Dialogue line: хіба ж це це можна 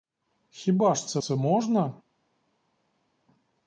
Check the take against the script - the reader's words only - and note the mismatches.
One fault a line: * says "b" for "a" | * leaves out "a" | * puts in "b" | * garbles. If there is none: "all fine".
all fine